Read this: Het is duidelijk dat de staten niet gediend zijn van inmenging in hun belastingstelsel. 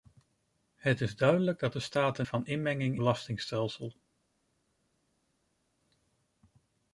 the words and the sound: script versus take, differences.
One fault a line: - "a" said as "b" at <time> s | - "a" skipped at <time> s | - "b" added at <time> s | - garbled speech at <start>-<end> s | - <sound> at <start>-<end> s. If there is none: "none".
- "niet gediend zijn" skipped at 2.3 s
- "in hun" skipped at 3.0 s